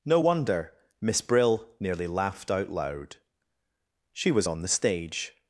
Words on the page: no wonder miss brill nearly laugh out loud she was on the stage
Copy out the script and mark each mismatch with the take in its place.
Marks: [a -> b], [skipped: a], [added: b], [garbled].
no wonder miss brill nearly [laugh -> laughed] out loud she was on the stage